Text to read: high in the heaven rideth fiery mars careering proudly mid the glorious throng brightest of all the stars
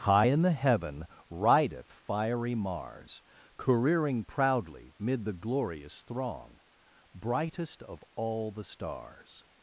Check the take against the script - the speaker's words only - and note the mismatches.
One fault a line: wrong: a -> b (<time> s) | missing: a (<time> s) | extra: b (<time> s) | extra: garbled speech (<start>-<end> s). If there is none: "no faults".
no faults